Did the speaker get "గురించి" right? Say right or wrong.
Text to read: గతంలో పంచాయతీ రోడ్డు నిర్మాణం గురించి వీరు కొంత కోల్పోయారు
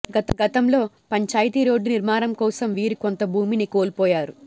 wrong